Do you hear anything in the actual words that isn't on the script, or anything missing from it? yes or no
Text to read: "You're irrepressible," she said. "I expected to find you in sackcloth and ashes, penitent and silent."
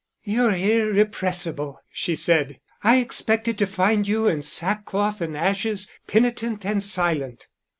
no